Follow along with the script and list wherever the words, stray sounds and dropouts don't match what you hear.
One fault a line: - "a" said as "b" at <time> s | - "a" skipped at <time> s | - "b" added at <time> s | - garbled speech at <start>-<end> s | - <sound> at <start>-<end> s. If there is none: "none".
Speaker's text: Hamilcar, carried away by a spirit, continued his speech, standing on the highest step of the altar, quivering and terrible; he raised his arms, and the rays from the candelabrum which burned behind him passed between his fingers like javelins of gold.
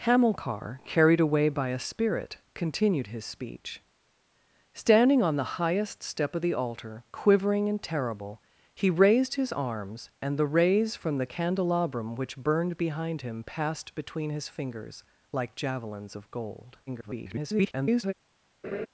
- garbled speech at 16.9-18.1 s
- laugh at 18.6-18.9 s